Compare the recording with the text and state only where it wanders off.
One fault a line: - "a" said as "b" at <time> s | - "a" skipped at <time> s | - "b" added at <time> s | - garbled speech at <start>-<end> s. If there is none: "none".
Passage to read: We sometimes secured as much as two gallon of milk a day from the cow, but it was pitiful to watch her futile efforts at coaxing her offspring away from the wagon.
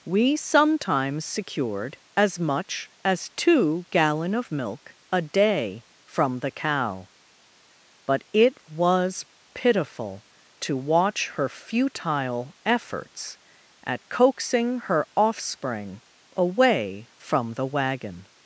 none